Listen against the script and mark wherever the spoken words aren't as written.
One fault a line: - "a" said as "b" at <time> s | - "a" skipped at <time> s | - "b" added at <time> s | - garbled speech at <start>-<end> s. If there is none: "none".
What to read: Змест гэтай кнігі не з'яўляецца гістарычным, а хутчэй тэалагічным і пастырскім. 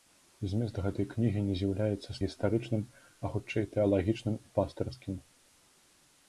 none